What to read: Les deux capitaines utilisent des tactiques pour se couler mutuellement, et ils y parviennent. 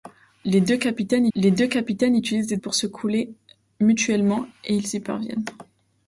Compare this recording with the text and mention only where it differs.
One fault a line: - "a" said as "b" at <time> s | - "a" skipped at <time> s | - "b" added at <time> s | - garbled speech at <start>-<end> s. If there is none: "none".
- "les deux capitaines" added at 1.4 s
- "tactiques" skipped at 2.6 s